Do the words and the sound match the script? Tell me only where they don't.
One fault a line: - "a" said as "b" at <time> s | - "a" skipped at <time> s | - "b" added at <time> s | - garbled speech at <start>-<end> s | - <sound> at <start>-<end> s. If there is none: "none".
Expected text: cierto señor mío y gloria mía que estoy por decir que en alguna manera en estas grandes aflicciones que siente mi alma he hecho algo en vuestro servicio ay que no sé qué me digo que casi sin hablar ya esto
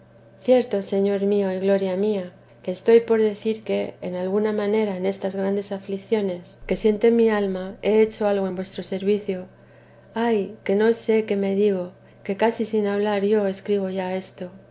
- "yo escribo" added at 13.2 s